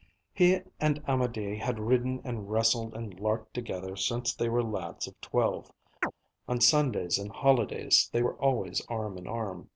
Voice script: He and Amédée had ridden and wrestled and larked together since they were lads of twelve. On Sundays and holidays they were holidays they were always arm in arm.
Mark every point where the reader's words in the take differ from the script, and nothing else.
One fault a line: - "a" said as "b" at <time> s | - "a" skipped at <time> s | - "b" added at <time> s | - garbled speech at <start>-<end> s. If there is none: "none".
- "holidays they were" skipped at 8.4 s